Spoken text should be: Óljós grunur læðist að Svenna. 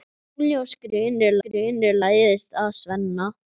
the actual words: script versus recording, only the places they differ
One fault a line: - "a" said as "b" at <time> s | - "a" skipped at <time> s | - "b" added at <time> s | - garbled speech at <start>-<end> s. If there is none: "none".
- "grunur" added at 1.5 s